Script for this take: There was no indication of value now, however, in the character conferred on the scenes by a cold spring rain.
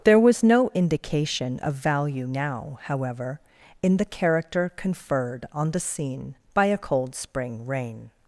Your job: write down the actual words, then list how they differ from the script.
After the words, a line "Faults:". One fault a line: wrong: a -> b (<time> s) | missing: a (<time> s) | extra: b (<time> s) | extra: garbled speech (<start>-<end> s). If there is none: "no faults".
There was no indication of value now, however, in the character conferred on the scene by a cold spring rain.
Faults:
wrong: scenes -> scene (5.8 s)